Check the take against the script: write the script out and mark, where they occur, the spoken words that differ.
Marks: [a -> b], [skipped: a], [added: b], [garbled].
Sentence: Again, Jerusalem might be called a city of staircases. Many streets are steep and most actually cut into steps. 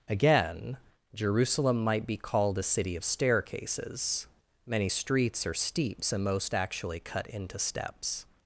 Again, Jerusalem might be called a city of staircases. Many streets are [steep -> steeps] and most actually cut into steps.